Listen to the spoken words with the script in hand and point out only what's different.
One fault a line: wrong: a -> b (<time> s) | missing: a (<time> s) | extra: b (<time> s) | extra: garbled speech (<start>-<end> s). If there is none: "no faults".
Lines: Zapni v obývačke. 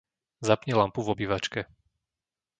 extra: lampu (0.7 s)